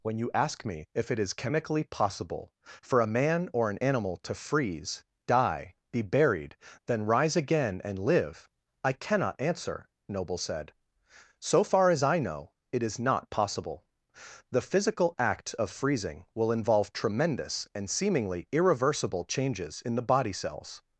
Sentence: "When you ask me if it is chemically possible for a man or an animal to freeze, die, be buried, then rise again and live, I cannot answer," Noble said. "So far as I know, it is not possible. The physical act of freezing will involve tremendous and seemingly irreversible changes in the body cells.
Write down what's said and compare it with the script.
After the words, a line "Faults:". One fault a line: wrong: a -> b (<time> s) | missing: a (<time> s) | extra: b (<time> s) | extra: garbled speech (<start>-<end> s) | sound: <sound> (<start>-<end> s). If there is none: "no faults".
"When you ask me if it is chemically possible for a man or an animal to freeze, die, be buried, then rise again and live, I cannot answer," Noble said. "So far as I know, it is not possible. The physical act of freezing will involve tremendous and seemingly irreversible changes in the body cells.
Faults:
no faults